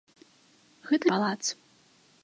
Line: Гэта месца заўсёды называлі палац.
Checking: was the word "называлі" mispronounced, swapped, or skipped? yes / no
yes